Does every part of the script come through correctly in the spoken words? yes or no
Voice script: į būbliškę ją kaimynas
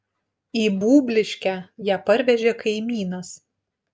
no